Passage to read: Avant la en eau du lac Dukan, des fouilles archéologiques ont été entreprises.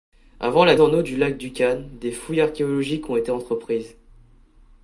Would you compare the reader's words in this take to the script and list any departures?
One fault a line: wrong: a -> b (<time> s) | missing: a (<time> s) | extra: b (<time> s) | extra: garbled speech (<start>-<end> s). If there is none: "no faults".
no faults